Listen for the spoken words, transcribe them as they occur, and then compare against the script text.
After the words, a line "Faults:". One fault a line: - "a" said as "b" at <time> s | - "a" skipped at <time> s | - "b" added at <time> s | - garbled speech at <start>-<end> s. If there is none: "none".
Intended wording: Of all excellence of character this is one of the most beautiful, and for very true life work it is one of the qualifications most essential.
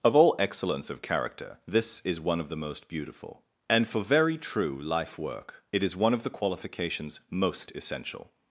Of all excellence of character this is one of the most beautiful, and for very true life work it is one of the qualifications most essential.
Faults:
none